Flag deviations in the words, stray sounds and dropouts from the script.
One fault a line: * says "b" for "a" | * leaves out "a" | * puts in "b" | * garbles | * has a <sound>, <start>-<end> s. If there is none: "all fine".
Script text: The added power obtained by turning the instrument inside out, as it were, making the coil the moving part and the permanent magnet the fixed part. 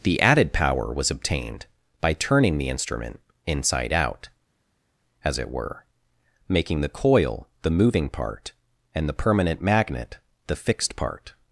* puts in "was"